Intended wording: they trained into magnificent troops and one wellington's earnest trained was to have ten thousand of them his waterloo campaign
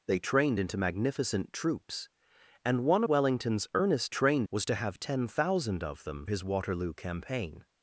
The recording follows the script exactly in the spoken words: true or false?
true